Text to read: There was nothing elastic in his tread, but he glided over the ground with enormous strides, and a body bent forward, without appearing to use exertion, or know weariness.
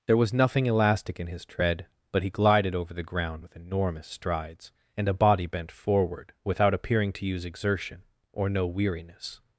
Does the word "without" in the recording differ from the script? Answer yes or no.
no